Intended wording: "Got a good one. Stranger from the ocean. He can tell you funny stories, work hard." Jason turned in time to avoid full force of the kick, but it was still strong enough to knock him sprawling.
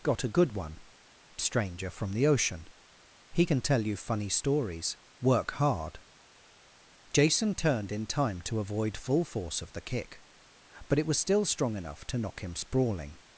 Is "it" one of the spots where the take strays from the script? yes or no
no